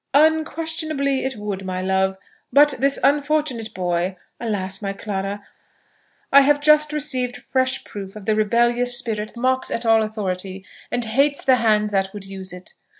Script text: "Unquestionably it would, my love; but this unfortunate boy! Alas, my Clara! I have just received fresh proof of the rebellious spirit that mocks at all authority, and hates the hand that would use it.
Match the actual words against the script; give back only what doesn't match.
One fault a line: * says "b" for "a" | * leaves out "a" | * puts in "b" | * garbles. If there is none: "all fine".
* leaves out "that"